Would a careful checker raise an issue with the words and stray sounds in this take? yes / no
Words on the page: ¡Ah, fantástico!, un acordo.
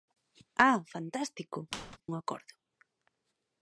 yes